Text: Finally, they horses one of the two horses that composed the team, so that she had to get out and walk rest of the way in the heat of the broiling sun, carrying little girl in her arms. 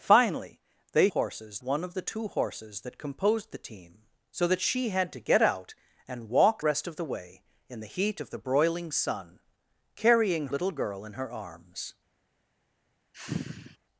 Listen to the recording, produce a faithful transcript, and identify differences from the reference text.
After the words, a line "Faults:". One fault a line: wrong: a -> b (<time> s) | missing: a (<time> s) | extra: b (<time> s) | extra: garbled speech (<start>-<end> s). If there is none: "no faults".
Finally, they horses one of the two horses that composed the team, so that she had to get out and walk rest of the way in the heat of the broiling sun, carrying little girl in her arms.
Faults:
no faults